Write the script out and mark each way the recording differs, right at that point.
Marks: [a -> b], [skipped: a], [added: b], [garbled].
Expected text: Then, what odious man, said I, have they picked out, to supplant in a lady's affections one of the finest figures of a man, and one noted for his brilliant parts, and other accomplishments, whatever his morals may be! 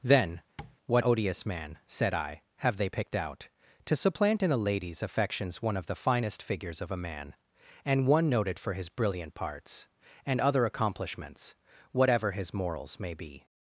Then, what odious man, said I, have they picked out, to supplant in a lady's affections one of the finest figures of a man, and one noted for his brilliant parts, and other accomplishments, whatever his morals may be!